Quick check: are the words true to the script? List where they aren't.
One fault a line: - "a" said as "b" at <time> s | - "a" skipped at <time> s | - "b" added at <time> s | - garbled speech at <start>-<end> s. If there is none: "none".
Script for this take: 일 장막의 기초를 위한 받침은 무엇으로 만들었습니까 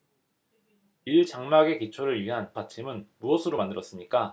none